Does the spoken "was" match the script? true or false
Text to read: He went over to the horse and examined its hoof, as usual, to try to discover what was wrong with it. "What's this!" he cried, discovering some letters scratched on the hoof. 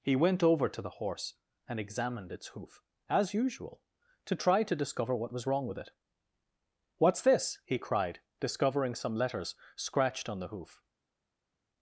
true